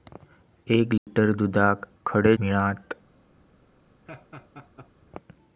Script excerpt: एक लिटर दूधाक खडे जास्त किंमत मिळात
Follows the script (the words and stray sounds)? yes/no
no